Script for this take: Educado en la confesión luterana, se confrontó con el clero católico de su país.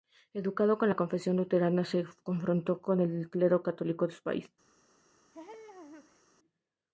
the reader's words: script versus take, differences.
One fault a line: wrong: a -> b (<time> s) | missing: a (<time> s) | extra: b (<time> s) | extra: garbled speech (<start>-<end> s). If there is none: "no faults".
no faults